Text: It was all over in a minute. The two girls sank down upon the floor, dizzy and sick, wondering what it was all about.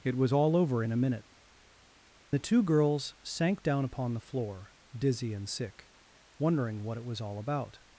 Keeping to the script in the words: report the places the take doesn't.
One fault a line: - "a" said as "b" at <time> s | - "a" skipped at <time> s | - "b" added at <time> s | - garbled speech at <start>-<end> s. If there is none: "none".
none